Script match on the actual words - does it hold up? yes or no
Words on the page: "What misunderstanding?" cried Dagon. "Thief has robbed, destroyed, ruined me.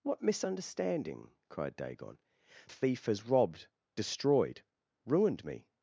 yes